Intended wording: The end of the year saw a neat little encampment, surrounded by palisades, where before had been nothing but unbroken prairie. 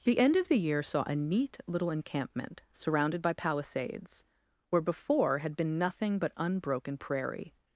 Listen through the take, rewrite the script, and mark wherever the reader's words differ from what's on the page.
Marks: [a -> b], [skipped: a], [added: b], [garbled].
The end of the year saw a neat little encampment, surrounded by palisades, where before had been nothing but unbroken prairie.